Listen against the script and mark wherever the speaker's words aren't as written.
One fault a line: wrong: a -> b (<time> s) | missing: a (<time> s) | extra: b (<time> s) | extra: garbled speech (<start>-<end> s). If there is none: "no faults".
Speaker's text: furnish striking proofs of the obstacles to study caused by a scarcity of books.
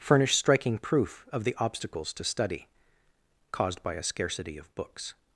wrong: proofs -> proof (0.8 s)